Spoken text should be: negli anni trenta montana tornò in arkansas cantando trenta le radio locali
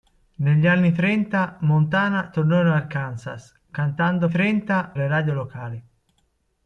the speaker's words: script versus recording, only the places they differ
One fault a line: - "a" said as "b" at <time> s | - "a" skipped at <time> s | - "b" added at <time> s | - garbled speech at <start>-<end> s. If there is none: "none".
none